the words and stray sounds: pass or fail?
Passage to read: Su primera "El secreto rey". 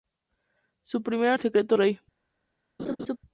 fail